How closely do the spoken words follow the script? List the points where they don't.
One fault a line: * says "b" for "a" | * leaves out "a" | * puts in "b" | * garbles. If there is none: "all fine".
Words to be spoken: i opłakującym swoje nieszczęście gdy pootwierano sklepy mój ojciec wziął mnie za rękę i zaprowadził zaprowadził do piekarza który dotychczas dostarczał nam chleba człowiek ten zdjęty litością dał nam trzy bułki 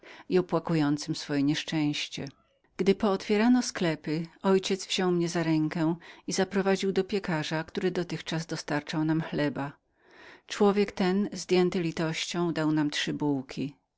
* leaves out "zaprowadził"